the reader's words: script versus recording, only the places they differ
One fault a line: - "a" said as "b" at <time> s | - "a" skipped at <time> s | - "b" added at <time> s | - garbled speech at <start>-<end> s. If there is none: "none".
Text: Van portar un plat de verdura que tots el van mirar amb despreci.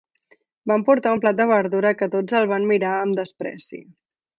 none